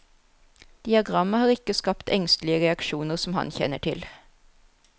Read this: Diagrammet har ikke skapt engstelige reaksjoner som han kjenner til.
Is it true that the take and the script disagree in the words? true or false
false